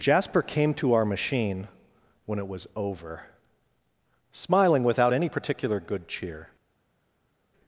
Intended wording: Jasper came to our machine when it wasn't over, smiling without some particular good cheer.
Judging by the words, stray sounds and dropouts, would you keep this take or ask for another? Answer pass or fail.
fail